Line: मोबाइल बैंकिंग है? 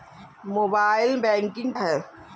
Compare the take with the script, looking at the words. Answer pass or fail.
pass